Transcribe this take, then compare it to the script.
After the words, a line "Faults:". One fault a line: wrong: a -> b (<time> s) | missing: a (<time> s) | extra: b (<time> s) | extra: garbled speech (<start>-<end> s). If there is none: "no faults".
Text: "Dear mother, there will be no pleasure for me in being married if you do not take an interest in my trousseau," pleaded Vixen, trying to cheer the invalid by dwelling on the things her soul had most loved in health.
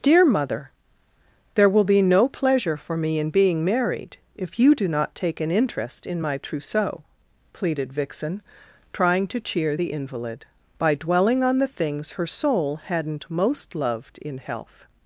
"Dear mother, there will be no pleasure for me in being married if you do not take an interest in my trousseau," pleaded Vixen, trying to cheer the invalid by dwelling on the things her soul hadn't most loved in health.
Faults:
wrong: had -> hadn't (12.8 s)